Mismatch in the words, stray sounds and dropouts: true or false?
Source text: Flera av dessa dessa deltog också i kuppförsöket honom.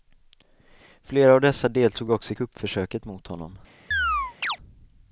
true